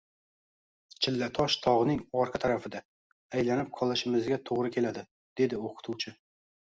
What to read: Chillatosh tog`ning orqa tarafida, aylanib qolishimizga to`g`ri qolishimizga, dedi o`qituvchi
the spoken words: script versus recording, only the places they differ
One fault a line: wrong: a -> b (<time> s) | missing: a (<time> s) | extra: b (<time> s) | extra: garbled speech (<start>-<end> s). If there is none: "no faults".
wrong: qolishimizga -> keladi (4.8 s)